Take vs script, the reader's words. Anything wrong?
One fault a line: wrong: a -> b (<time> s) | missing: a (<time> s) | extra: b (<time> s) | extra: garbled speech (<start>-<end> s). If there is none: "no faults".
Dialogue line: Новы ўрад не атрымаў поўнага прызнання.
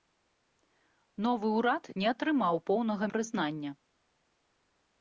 no faults